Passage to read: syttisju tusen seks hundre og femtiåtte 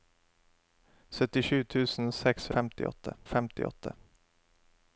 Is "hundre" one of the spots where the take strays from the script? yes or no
yes